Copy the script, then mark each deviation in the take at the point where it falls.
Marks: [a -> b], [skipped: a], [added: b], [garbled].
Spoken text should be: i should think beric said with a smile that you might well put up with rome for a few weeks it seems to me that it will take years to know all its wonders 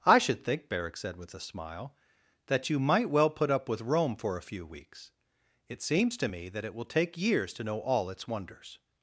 i should think beric said with a smile that you might well put up with rome for a few weeks it seems to me that it will take years to know all its wonders